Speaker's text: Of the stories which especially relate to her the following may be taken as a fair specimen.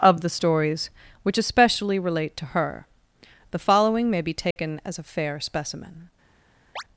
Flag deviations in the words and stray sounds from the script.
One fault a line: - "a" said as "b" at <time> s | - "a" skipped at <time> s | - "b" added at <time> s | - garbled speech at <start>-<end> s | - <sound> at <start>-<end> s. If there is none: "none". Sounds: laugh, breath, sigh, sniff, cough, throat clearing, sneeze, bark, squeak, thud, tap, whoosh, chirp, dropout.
- dropout at 4.5-4.6 s
- chirp at 6.8-6.8 s